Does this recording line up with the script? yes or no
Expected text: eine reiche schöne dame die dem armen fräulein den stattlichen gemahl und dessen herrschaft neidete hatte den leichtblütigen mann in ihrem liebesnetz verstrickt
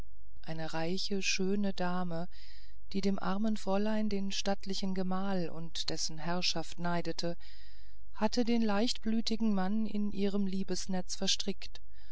yes